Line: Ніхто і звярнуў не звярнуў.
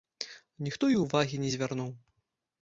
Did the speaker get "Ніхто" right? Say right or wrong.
right